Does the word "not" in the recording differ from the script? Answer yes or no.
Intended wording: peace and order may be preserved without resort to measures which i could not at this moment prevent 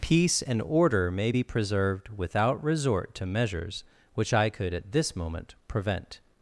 yes